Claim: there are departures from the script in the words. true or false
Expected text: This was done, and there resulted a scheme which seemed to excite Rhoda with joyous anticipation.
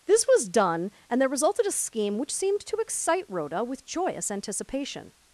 false